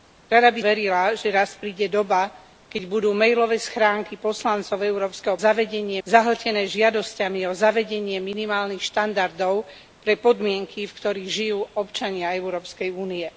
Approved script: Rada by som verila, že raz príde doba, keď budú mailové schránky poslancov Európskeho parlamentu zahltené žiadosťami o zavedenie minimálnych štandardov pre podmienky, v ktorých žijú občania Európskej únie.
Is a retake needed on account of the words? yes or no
yes